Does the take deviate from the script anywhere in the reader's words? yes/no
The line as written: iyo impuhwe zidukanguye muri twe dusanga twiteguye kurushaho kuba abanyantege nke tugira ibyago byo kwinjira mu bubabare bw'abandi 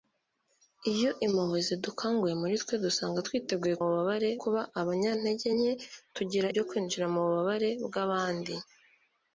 yes